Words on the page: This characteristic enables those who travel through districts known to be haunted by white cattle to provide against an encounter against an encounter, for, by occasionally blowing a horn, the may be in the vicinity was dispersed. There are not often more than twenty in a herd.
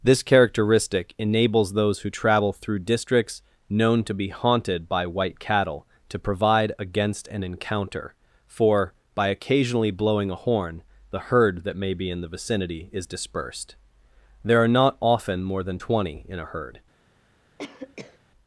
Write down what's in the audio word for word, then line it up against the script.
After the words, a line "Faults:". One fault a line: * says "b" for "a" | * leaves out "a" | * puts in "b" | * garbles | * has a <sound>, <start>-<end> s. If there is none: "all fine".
This characteristic enables those who travel through districts known to be haunted by white cattle to provide against an encounter, for, by occasionally blowing a horn, the herd that may be in the vicinity is dispersed. There are not often more than twenty in a herd.
Faults:
* leaves out "against an encounter"
* puts in "herd that"
* says "is" for "was"
* has a cough, 17.6-18.2 s